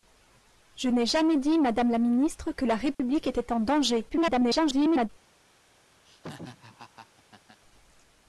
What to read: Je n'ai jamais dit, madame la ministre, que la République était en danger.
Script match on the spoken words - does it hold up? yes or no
no